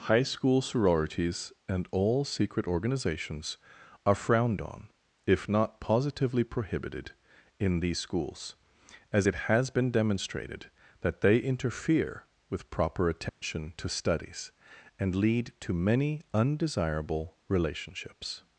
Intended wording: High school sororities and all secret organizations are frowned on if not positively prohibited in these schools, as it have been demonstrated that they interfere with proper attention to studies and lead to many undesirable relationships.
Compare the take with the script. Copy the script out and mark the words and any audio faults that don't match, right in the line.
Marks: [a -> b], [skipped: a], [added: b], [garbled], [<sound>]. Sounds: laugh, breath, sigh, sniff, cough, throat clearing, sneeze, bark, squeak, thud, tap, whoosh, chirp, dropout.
High school sororities and all secret organizations are frowned on if not positively prohibited in these schools, as it [have -> has] been demonstrated that they interfere with proper attention [dropout] to studies and lead to many undesirable relationships.